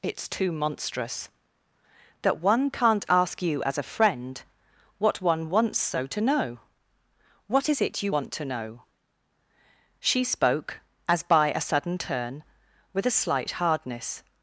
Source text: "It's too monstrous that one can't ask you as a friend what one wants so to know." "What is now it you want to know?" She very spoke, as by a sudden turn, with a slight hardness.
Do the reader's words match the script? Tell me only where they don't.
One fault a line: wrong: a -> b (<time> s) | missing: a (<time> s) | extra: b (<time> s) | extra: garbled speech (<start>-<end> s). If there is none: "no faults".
missing: now (7.8 s)
missing: very (10.2 s)